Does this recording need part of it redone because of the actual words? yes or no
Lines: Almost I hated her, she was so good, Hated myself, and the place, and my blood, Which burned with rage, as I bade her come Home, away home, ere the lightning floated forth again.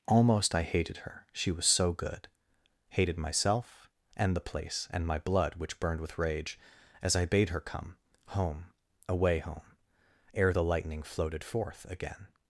no